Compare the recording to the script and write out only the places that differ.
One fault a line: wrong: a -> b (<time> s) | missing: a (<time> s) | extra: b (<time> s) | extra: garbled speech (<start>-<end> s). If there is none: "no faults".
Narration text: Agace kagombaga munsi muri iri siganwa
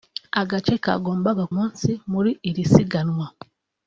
no faults